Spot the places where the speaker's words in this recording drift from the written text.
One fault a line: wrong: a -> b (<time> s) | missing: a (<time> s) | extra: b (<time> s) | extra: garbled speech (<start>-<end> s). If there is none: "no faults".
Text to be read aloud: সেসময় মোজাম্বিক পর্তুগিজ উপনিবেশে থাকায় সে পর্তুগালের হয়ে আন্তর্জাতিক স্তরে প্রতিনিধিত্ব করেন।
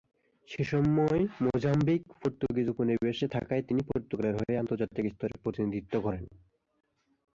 wrong: সে -> তিনি (3.6 s)